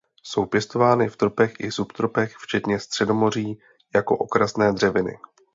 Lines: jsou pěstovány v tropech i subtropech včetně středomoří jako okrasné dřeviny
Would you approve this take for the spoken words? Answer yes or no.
yes